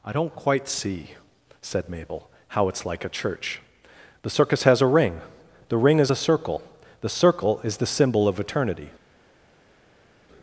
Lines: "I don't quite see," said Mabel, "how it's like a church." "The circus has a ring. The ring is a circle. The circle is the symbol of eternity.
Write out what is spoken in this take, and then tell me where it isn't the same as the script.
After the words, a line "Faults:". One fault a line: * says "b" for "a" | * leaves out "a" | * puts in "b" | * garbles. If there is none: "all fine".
"I don't quite see," said Mabel, "how it's like a church." "The circus has a ring. The ring is a circle. The circle is the symbol of eternity.
Faults:
all fine